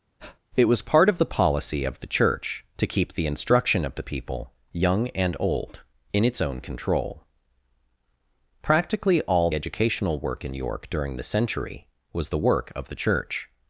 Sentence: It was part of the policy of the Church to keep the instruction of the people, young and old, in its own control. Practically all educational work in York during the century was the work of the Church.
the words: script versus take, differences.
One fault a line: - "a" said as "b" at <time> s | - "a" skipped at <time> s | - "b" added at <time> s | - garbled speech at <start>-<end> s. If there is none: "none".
none